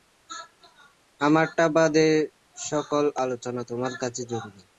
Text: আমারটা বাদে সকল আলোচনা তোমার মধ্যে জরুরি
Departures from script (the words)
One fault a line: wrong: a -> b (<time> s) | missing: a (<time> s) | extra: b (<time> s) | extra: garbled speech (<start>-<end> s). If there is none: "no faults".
wrong: মধ্যে -> কাছে (4.0 s)